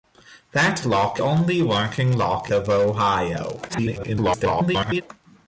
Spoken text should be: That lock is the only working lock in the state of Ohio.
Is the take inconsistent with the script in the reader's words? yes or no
yes